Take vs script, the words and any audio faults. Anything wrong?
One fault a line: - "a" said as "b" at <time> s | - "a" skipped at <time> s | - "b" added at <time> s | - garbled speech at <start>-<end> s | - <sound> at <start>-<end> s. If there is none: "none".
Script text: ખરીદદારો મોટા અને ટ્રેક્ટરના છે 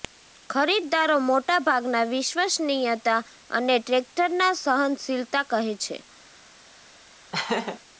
- "ભાગના વિશ્વસનીયતા" added at 1.7 s
- "સહનશીલતા કહે" added at 4.6 s
- laugh at 7.3-7.8 s